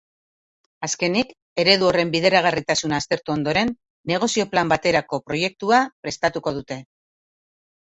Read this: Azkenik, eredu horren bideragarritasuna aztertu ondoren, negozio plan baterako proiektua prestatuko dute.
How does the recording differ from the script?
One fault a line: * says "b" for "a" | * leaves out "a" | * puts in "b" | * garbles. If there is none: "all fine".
all fine